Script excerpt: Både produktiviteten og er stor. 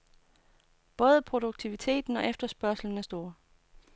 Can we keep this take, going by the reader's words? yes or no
no